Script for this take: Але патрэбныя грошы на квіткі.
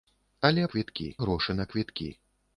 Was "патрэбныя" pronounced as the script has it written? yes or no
no